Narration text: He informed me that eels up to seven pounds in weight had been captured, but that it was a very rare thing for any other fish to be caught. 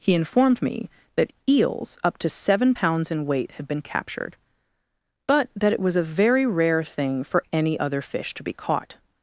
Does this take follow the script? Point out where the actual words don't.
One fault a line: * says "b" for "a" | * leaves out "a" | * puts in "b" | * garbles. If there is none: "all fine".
all fine